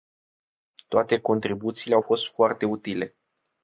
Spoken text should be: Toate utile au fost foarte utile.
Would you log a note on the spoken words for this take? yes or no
yes